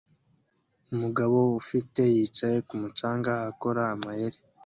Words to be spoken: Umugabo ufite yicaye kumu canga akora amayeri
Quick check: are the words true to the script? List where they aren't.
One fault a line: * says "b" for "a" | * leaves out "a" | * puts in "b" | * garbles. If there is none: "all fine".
all fine